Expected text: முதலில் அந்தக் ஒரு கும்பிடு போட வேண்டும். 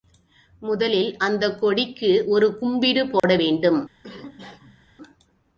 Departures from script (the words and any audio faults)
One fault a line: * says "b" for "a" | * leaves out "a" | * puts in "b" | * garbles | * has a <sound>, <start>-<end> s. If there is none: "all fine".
* puts in "கொடிக்கு"
* has a dropout, 3.2-3.2 s
* has a cough, 4.0-4.9 s